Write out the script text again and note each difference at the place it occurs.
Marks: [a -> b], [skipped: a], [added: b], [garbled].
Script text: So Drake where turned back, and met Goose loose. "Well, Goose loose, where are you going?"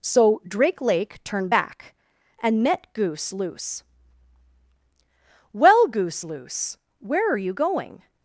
So Drake [where -> lake] turned back, and met Goose loose. "Well, Goose loose, where are you going?"